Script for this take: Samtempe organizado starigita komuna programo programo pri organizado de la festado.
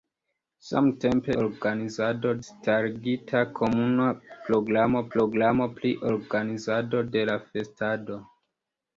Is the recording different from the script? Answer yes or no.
no